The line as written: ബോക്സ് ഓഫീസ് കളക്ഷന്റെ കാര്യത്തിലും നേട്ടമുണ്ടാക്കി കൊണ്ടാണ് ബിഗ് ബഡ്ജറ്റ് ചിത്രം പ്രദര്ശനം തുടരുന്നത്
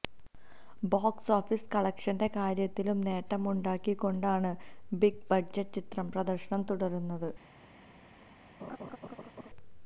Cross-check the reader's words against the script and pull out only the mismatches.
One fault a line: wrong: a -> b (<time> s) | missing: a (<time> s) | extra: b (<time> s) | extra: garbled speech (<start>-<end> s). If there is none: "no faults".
no faults